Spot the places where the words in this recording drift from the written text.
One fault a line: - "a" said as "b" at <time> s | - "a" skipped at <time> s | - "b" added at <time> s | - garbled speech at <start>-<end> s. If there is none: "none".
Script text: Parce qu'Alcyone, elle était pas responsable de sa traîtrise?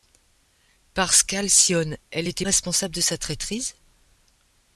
- "pas" skipped at 2.5 s